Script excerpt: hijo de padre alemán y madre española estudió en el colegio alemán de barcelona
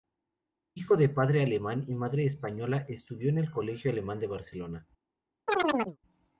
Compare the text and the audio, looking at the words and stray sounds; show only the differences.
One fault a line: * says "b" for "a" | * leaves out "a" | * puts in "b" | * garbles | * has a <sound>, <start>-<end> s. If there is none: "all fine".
* has a chirp, 5.5-6.0 s